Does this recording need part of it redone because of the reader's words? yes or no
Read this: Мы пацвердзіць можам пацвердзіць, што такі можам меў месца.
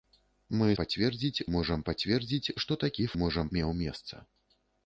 no